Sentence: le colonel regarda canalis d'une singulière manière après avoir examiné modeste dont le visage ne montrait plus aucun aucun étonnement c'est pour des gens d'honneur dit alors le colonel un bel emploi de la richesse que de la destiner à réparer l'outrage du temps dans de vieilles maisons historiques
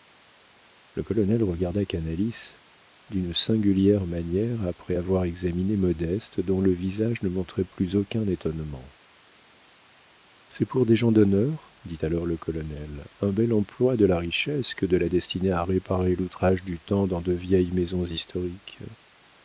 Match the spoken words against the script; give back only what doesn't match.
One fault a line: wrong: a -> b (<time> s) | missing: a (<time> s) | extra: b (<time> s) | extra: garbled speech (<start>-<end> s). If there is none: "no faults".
missing: aucun (8.3 s)